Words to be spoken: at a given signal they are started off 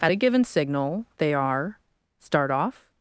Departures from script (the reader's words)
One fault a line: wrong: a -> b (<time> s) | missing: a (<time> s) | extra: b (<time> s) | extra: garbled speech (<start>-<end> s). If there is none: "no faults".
wrong: started -> start (2.2 s)